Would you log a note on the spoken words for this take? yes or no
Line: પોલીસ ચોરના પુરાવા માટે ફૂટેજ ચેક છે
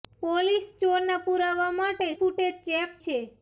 no